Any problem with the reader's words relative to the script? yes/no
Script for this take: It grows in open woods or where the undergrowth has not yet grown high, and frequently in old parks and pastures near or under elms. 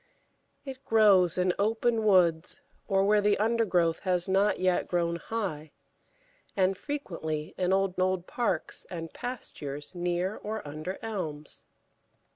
yes